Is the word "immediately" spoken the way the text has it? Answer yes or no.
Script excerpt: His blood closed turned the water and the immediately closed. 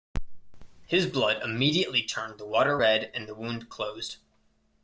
no